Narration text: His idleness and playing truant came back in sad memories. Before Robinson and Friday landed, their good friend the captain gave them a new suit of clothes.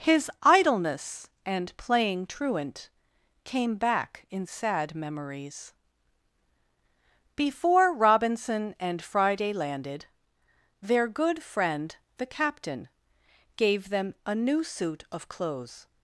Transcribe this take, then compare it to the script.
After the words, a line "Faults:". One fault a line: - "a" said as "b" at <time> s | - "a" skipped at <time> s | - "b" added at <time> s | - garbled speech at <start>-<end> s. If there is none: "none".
His idleness and playing truant came back in sad memories. Before Robinson and Friday landed, their good friend the captain gave them a new suit of clothes.
Faults:
none